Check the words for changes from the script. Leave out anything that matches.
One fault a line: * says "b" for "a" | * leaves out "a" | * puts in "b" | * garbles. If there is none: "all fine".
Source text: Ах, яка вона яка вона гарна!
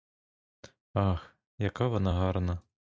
* leaves out "яка вона"